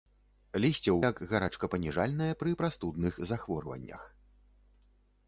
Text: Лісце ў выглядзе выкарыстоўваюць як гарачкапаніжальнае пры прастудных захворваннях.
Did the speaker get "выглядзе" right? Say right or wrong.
wrong